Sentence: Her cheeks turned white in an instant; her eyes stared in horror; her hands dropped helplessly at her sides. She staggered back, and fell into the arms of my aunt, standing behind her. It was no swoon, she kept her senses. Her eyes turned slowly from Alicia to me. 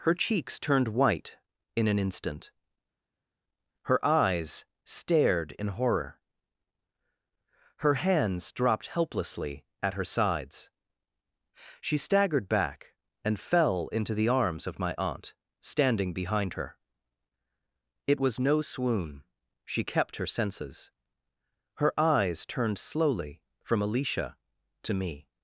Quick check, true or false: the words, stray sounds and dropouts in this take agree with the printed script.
true